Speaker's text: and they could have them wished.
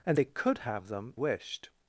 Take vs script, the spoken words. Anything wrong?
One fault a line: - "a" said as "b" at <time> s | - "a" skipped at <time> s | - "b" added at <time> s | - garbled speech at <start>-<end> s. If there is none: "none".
none